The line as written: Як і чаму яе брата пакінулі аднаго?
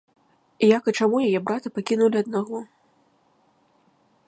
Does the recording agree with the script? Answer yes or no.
yes